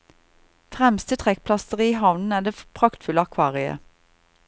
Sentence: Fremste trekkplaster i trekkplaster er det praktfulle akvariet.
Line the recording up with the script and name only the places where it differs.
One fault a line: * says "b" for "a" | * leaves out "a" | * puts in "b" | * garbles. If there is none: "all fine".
* says "havnen" for "trekkplaster"